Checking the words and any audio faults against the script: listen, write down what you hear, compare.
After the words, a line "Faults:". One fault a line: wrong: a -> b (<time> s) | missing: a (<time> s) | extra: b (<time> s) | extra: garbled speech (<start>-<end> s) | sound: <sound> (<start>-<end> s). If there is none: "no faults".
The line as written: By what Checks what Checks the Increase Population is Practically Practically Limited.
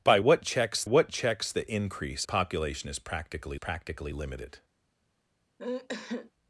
By what Checks what Checks the Increase Population is Practically Practically Limited.
Faults:
sound: sneeze (5.6-6.3 s)